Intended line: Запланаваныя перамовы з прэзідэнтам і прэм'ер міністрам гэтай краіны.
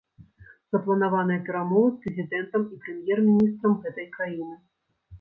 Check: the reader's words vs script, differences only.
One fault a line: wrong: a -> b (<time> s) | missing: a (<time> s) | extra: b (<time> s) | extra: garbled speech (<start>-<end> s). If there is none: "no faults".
no faults